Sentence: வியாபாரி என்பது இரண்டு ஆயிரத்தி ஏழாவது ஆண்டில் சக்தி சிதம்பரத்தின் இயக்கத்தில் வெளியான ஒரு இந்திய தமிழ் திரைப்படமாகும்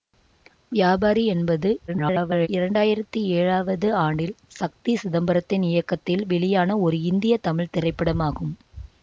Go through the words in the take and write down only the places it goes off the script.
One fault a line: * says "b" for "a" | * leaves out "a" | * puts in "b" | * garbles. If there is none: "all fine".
* garbles